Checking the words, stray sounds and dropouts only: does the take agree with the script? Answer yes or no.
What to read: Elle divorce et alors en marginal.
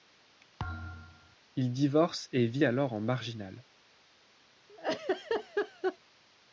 no